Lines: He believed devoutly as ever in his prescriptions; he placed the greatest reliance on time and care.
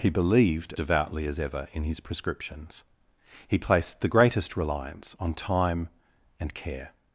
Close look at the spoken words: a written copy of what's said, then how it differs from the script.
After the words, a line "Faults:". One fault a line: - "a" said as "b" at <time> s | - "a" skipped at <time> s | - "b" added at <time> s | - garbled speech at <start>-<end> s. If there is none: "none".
He believed devoutly as ever in his prescriptions; he placed the greatest reliance on time and care.
Faults:
none